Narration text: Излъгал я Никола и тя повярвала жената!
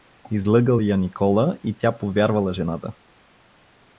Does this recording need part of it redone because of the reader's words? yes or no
no